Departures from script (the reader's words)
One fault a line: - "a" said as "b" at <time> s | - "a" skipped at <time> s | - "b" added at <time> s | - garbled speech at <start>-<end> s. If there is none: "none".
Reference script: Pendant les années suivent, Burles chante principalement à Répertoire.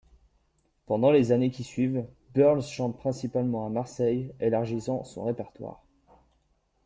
- "qui" added at 1.5 s
- "Marseille élargissant son" added at 3.7 s